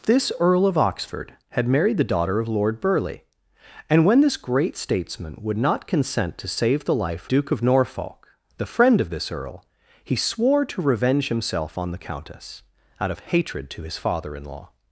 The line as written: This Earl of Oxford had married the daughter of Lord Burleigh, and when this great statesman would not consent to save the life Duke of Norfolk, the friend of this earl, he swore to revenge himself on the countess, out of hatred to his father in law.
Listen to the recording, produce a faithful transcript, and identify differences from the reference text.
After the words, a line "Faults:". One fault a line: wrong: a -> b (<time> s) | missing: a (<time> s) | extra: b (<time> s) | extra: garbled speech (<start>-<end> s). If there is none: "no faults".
This Earl of Oxford had married the daughter of Lord Burleigh, and when this great statesman would not consent to save the life Duke of Norfolk, the friend of this earl, he swore to revenge himself on the countess, out of hatred to his father in law.
Faults:
no faults